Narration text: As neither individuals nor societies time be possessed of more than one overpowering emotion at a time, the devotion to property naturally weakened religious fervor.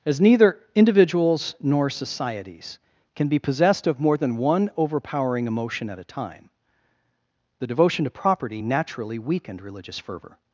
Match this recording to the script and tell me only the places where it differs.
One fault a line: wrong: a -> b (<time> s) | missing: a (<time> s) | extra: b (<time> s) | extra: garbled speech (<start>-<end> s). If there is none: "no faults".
wrong: time -> can (3.1 s)